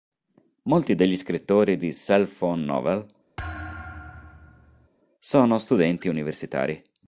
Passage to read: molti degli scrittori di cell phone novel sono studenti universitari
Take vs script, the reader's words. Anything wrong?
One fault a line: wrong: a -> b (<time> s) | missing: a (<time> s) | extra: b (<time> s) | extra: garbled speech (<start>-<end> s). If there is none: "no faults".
no faults